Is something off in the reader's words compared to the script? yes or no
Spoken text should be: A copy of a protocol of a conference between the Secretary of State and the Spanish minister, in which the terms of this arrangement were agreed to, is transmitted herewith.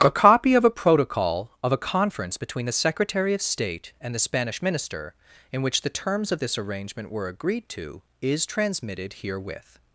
no